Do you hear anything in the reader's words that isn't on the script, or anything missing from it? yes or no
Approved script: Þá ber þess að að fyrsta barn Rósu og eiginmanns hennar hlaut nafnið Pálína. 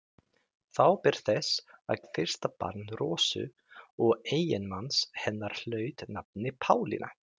no